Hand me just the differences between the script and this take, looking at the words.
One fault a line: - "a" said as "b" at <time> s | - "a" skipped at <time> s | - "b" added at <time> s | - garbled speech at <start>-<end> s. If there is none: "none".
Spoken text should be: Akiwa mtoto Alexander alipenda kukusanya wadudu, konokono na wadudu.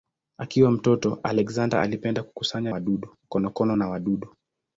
none